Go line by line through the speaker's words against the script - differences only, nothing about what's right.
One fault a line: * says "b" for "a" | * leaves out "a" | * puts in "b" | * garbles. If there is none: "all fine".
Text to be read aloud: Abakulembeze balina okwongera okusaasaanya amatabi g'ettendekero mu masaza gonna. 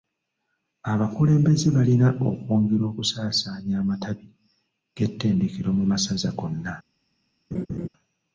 all fine